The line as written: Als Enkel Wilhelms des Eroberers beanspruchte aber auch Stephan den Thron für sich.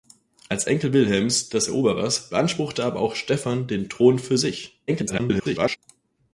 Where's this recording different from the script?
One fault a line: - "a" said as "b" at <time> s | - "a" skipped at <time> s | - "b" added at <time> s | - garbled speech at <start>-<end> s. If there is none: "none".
- garbled speech at 4.9-5.8 s